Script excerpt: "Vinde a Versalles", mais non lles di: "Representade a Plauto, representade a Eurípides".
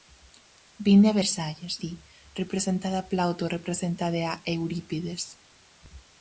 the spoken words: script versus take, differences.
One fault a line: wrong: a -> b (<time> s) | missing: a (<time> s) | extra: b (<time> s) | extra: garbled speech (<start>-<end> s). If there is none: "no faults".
missing: mais non lles (1.7 s)